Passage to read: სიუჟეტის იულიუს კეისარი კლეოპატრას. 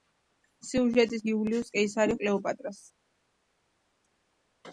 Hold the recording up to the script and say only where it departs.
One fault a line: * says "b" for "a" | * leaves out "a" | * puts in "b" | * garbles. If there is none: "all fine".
all fine